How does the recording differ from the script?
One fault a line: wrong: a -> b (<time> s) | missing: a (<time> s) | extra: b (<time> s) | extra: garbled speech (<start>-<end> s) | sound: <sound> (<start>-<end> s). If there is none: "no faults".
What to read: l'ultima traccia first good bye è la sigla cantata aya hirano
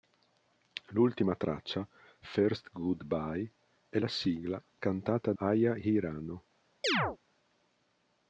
sound: chirp (6.8-7.2 s)